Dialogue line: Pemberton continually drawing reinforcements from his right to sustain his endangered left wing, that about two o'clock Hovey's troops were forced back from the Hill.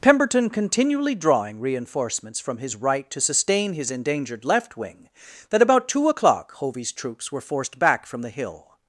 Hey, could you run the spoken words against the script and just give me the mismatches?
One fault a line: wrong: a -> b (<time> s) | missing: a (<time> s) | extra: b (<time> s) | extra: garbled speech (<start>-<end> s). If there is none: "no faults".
no faults